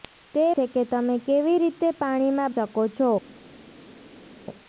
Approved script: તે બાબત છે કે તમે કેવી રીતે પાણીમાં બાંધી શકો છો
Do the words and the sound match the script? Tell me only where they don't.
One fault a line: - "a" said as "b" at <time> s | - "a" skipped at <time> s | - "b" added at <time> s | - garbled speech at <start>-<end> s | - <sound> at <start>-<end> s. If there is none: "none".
- "બાબત" skipped at 0.5 s
- "બાંધી" skipped at 2.5 s